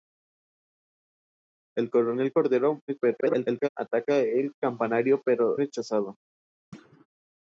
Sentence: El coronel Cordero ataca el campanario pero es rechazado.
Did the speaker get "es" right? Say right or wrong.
wrong